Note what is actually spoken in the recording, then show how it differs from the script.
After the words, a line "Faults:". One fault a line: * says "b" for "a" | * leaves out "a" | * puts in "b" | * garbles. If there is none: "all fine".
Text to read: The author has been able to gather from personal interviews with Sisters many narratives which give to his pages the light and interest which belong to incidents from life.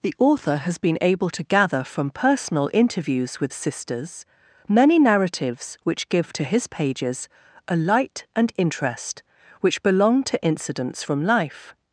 The author has been able to gather from personal interviews with Sisters many narratives which give to his pages a light and interest which belong to incidents from life.
Faults:
* says "a" for "the"